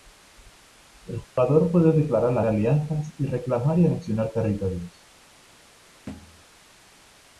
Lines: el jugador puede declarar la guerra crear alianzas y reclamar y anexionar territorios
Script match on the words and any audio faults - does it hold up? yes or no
no